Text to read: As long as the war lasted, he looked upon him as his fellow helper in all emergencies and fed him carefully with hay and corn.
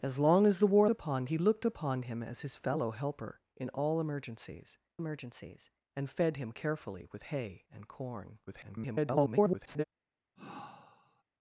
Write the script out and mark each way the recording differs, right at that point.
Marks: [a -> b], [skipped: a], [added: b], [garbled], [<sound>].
As long as the war [lasted, -> upon] he looked upon him as his fellow helper in all emergencies [added: emergencies] and fed him carefully with hay and corn. [garbled] [sigh]